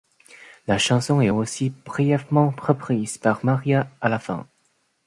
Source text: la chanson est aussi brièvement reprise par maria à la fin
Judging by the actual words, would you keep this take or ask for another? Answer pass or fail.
pass